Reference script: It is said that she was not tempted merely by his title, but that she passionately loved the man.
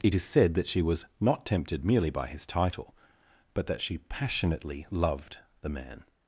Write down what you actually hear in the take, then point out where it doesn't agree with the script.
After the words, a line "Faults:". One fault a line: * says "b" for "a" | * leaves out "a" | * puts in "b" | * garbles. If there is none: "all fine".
It is said that she was not tempted merely by his title, but that she passionately loved the man.
Faults:
all fine